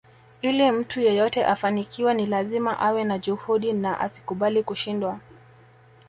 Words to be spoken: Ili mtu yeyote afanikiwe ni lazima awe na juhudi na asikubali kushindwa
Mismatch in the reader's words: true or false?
false